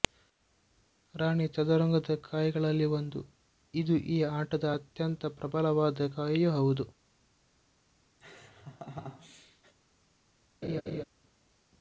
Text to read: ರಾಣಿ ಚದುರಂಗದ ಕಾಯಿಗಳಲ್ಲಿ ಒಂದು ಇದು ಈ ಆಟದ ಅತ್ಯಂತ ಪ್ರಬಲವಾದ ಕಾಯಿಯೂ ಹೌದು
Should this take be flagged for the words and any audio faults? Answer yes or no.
yes